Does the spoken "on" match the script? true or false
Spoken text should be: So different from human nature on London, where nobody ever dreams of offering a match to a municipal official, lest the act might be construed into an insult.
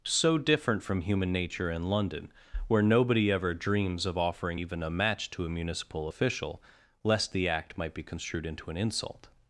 false